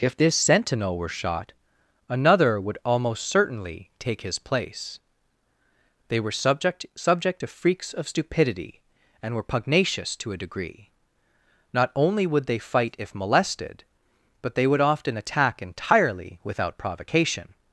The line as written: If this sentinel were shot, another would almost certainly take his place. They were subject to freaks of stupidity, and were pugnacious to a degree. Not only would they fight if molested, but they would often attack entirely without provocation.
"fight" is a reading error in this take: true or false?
false